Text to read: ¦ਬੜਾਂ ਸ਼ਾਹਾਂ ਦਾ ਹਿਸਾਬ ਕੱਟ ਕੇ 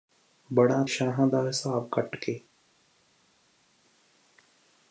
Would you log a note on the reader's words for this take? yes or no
no